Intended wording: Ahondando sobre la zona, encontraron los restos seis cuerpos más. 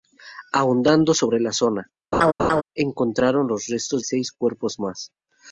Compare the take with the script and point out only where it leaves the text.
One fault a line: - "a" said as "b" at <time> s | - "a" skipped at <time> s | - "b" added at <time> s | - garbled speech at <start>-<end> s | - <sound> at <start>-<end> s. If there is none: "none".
- laugh at 2.1-2.6 s